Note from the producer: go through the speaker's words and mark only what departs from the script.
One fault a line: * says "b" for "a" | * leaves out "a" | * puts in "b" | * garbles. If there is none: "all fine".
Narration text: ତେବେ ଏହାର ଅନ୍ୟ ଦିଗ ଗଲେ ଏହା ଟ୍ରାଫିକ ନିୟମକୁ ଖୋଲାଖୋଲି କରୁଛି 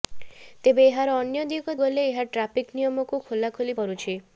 all fine